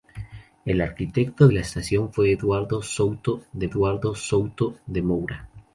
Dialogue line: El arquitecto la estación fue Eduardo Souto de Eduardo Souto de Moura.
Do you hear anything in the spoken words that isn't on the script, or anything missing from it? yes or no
no